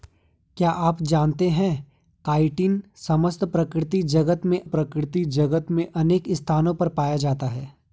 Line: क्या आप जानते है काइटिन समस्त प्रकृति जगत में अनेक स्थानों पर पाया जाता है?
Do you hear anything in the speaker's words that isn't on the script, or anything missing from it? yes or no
yes